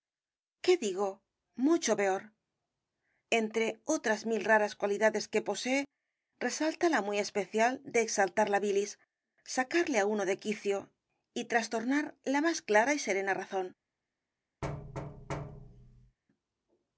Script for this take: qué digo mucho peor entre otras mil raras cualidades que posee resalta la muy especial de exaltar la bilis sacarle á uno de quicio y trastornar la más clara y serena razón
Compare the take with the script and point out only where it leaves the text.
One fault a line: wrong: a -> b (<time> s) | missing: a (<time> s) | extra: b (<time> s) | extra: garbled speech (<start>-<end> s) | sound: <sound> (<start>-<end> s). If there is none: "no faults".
sound: thud (14.6-16.2 s)